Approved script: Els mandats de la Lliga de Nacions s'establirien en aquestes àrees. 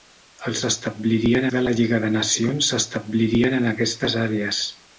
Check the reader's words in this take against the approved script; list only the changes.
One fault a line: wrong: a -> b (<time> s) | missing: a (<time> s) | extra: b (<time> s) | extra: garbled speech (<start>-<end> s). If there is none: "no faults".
wrong: mandats -> s'establirien (0.6 s)